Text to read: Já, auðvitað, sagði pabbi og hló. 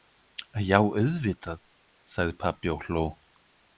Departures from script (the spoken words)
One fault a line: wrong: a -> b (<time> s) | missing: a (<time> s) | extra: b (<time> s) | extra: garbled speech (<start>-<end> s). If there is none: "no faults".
no faults